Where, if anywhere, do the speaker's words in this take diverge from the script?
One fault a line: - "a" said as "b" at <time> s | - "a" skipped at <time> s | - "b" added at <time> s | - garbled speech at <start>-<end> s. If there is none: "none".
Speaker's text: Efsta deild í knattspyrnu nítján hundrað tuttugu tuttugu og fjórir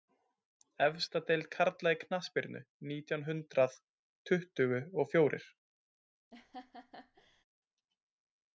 - "karla" added at 1.6 s
- "tuttugu" skipped at 4.8 s